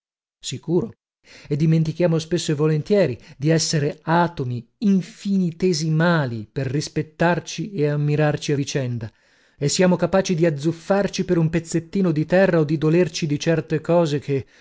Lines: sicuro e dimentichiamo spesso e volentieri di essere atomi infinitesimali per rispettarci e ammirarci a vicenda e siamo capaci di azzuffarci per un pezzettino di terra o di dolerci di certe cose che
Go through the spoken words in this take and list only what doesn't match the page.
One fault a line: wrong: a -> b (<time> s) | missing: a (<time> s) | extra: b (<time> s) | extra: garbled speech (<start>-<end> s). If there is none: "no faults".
no faults